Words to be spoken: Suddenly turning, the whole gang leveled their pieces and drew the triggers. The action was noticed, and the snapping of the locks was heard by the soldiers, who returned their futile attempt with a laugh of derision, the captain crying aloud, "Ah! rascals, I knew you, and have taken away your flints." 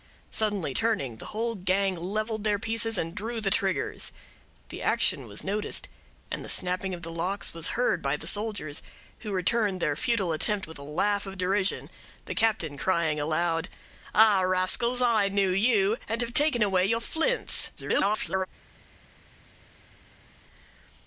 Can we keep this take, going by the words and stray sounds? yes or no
no